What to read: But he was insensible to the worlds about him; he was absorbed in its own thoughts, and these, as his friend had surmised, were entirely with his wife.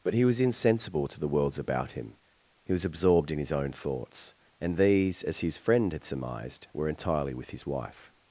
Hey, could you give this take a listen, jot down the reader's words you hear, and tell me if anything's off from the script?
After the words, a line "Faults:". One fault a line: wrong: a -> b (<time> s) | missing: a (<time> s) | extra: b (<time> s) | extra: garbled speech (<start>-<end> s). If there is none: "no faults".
But he was insensible to the worlds about him; he was absorbed in his own thoughts, and these, as his friend had surmised, were entirely with his wife.
Faults:
wrong: its -> his (3.4 s)